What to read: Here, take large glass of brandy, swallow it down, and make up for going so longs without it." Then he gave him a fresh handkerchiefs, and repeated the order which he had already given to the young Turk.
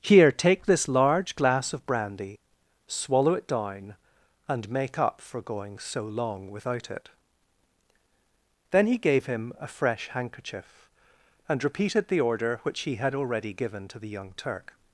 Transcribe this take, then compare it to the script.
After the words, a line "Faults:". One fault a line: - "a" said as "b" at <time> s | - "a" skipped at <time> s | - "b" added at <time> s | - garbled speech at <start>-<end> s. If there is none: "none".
Here, take this large glass of brandy, swallow it down, and make up for going so long without it." Then he gave him a fresh handkerchief, and repeated the order which he had already given to the young Turk.
Faults:
- "this" added at 0.7 s
- "longs" said as "long" at 6.0 s
- "handkerchiefs" said as "handkerchief" at 10.1 s